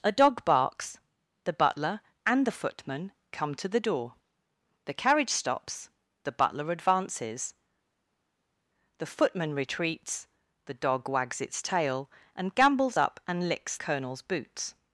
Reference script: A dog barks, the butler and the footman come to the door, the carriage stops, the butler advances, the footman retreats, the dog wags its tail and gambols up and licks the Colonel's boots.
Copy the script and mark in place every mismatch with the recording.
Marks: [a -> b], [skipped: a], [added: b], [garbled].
A dog barks, the butler and the footman come to the door, the carriage stops, the butler advances, the footman retreats, the dog wags its tail and gambols up and licks [skipped: the] Colonel's boots.